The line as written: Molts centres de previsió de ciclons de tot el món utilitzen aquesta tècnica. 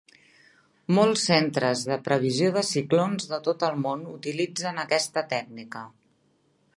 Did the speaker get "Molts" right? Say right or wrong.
right